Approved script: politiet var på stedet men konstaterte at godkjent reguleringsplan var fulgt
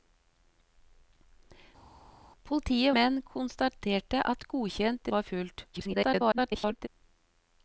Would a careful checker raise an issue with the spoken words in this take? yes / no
yes